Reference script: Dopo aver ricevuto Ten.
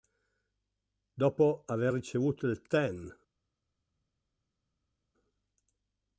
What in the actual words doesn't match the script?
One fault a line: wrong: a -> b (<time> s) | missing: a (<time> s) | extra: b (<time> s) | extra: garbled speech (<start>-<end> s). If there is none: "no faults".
extra: il (2.5 s)